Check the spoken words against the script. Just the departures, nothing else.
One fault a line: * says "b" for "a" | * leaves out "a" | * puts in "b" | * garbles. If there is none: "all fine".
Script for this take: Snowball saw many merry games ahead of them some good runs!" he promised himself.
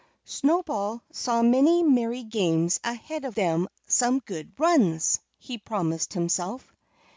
all fine